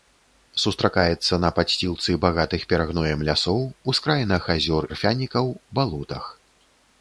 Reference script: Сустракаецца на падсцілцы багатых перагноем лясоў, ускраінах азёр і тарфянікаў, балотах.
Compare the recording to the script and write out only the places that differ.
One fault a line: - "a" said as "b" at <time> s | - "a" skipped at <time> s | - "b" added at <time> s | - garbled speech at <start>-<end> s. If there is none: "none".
- "і" skipped at 4.8 s